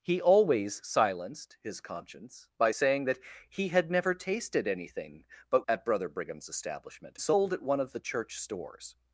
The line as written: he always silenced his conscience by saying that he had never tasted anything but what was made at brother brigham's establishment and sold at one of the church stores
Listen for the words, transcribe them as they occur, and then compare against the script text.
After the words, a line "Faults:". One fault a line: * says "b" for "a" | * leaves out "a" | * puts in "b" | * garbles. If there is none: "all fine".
he always silenced his conscience by saying that he had never tasted anything but at brother brigham's establishment sold at one of the church stores
Faults:
* leaves out "what was made"
* leaves out "and"